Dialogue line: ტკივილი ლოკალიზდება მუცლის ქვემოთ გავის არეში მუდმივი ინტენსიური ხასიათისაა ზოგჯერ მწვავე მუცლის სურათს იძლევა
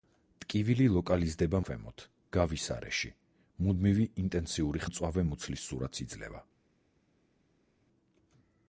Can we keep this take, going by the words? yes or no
no